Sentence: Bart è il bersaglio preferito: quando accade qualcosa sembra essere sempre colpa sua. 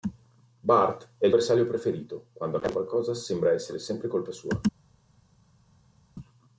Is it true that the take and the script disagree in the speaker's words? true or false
false